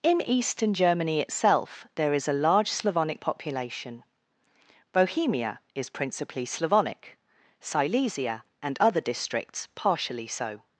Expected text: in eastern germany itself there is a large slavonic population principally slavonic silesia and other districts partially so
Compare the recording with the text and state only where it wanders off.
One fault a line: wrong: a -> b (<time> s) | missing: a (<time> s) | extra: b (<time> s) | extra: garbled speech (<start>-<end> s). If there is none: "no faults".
extra: bohemia is (4.9 s)